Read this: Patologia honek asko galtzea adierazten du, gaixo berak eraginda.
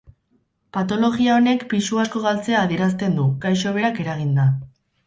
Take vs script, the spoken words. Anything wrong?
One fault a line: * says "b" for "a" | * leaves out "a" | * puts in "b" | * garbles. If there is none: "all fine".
* puts in "pisu"